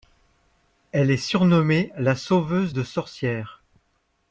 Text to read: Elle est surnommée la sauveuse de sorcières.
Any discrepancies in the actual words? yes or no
no